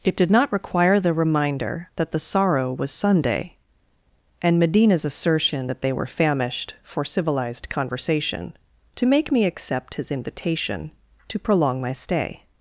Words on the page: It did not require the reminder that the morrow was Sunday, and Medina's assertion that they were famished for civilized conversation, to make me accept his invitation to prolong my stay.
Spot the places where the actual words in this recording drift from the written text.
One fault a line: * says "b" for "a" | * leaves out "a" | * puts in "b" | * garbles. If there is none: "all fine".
* says "sorrow" for "morrow"